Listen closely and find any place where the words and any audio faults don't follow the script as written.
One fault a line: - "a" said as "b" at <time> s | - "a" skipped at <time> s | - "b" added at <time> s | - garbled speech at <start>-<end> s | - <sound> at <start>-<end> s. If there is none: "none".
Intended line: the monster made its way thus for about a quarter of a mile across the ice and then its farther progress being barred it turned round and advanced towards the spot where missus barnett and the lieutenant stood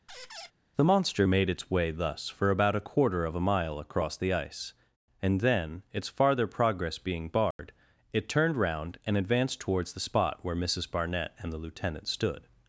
- squeak at 0.1-0.5 s
- dropout at 7.5-7.6 s